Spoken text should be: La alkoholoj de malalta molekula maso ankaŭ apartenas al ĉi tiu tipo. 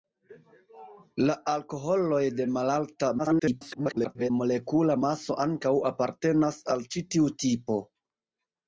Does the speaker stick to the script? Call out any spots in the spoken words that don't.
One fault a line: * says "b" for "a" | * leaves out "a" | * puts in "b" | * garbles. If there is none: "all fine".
* garbles